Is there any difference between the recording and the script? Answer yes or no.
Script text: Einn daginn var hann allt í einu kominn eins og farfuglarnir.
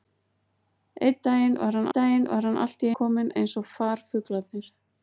yes